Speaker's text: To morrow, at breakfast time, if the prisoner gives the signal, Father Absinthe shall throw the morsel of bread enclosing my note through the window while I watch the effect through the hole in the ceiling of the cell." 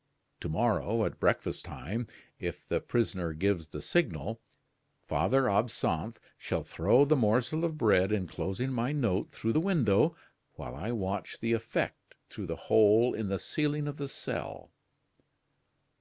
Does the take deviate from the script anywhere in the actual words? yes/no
no